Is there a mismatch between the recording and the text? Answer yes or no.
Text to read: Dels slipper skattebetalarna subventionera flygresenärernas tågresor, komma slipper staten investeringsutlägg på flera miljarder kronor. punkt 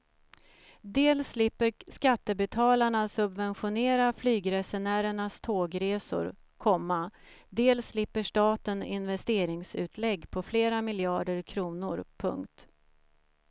yes